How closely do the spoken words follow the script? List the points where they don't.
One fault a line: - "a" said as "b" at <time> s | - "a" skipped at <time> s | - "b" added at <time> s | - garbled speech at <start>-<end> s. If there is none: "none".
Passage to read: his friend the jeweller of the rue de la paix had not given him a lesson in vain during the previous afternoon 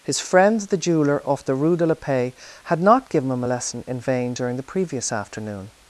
- "of" said as "off" at 1.3 s